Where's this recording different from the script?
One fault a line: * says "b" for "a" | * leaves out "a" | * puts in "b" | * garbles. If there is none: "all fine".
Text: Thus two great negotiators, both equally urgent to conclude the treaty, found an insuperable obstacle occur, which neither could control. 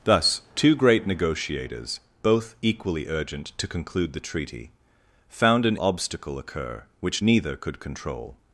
* leaves out "insuperable"